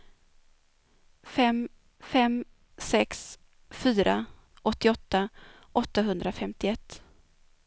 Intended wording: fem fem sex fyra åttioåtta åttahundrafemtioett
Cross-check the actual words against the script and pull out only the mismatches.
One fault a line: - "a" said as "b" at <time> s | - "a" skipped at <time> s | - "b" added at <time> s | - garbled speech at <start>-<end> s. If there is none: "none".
none